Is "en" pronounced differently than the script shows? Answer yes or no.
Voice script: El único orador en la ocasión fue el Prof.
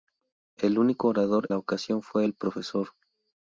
yes